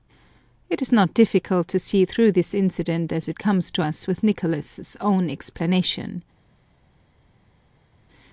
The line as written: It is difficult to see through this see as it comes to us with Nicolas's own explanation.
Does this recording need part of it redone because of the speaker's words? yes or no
yes